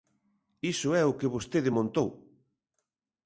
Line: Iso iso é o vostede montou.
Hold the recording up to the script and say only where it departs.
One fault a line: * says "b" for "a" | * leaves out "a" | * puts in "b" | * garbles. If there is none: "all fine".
* leaves out "iso"
* puts in "que"